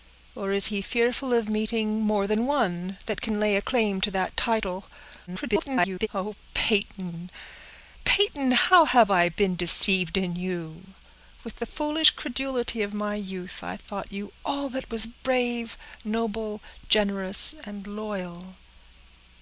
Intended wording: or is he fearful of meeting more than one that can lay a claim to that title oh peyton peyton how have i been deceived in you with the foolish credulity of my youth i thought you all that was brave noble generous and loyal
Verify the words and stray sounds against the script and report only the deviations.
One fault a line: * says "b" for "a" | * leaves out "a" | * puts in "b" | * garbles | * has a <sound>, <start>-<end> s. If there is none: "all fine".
* garbles